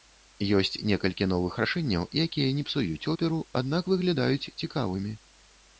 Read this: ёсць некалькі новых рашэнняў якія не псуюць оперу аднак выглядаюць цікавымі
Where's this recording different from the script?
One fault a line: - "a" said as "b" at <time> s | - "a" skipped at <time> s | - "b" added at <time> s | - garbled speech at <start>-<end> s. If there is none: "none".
none